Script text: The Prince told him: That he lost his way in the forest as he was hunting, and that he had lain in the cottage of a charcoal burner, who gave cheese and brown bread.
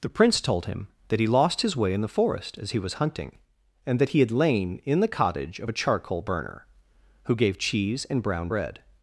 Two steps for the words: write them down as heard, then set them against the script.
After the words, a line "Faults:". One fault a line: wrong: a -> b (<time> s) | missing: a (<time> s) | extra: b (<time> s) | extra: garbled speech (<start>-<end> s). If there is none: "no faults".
The Prince told him: That he lost his way in the forest as he was hunting, and that he had lain in the cottage of a charcoal burner, who gave cheese and brown bread.
Faults:
no faults